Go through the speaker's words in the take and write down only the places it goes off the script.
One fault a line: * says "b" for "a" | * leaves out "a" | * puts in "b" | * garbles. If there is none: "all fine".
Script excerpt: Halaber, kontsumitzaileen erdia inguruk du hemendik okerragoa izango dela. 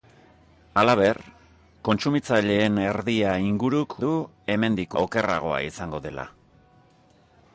all fine